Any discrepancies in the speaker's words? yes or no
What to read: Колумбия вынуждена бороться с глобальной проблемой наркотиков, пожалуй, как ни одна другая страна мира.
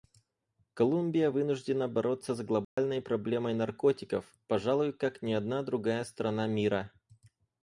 no